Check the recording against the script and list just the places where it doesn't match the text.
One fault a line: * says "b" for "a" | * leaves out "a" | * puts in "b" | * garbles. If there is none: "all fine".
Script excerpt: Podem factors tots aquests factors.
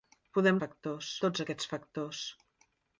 all fine